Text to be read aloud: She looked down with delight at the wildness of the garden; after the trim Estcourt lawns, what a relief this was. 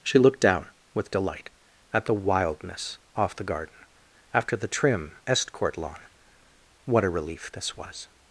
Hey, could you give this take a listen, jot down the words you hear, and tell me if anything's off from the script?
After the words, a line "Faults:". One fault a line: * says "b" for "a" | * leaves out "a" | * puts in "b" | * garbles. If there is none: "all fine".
She looked down with delight at the wildness off the garden; after the trim Estcourt lawn, what a relief this was.
Faults:
* says "off" for "of"
* says "lawn" for "lawns"